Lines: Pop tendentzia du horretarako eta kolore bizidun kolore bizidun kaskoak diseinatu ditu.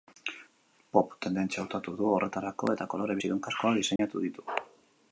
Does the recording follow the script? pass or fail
fail